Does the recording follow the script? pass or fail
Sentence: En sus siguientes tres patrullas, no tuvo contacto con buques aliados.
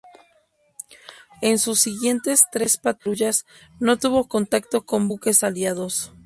pass